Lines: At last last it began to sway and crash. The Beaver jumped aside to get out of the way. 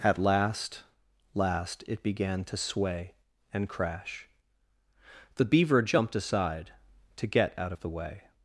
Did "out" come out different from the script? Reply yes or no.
no